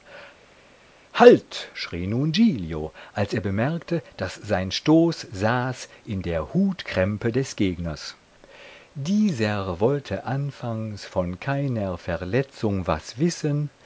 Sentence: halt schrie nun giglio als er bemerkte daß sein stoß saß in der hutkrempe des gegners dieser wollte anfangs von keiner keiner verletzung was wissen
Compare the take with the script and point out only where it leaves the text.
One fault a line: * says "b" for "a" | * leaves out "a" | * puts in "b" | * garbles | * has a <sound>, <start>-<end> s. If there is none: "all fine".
* leaves out "keiner"